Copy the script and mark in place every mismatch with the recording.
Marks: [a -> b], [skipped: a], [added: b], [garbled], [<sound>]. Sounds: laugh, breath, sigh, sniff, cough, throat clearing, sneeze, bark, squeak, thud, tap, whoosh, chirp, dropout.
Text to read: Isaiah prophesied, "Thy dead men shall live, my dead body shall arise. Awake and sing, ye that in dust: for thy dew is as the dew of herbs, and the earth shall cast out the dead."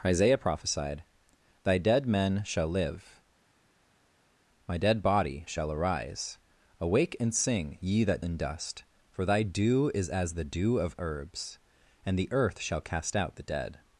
Isaiah prophesied, "Thy dead men shall live, my dead body shall arise. Awake and sing, ye that in dust: for thy dew is as the dew of herbs, and the earth shall cast out the dead."